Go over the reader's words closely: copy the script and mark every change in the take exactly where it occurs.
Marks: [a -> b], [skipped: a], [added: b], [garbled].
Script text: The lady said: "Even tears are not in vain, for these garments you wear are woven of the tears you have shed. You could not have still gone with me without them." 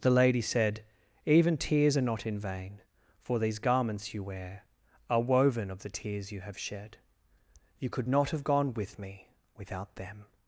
The lady said: "Even tears are not in vain, for these garments you wear are woven of the tears you have shed. You could not have [skipped: still] gone with me without them."